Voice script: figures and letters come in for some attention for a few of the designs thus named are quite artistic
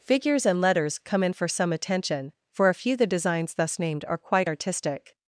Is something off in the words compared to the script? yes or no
yes